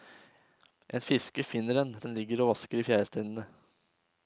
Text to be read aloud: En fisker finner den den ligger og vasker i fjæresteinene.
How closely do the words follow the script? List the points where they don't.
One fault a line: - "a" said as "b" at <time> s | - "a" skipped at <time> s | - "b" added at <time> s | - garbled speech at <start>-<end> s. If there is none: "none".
none